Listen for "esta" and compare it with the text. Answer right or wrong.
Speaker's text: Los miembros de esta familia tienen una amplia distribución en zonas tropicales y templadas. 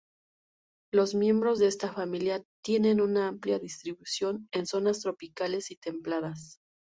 right